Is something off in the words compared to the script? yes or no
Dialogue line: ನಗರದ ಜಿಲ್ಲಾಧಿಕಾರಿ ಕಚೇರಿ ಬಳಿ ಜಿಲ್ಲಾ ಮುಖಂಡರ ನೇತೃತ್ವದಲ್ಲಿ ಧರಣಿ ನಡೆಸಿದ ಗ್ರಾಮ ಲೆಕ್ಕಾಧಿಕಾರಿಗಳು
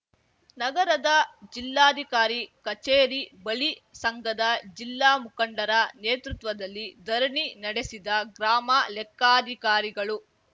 yes